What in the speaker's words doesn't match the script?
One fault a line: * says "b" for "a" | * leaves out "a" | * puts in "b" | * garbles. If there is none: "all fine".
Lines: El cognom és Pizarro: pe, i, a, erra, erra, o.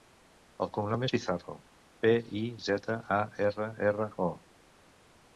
* puts in "zeta"